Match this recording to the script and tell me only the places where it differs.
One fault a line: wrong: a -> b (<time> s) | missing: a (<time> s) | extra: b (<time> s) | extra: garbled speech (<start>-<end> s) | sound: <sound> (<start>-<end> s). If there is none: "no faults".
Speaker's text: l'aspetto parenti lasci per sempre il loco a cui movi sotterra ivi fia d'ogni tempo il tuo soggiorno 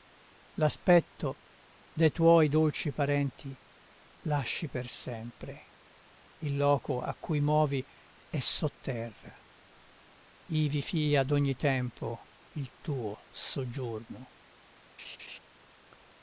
extra: de tuoi dolci (1.9 s)
extra: è (8.3 s)
sound: laugh (15.0-15.4 s)